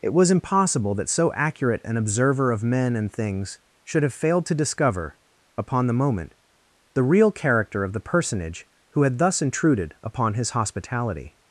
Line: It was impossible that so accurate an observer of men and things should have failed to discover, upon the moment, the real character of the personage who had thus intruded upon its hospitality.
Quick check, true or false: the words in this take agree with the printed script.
false